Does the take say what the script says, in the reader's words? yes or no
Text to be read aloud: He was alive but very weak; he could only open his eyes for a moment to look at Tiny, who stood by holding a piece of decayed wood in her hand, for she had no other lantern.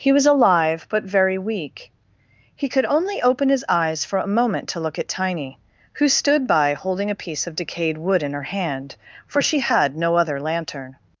yes